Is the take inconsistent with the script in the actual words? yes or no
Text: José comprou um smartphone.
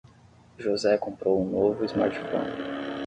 yes